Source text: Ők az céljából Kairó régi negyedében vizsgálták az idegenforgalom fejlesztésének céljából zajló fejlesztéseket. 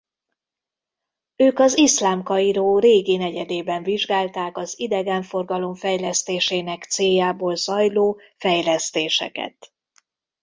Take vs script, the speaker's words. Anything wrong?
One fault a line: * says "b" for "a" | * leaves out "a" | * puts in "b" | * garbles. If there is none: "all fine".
* says "iszlám" for "céljából"